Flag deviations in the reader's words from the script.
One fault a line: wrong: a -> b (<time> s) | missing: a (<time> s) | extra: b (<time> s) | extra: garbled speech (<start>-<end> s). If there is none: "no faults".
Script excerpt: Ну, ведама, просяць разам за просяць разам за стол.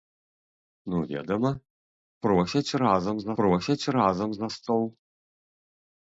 no faults